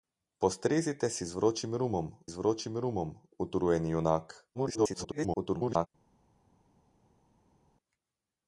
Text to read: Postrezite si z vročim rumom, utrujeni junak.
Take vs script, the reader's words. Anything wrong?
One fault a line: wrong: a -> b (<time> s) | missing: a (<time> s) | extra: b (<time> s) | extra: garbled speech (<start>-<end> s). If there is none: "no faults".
extra: z vročim rumom (2.3 s)
extra: garbled speech (4.5-5.9 s)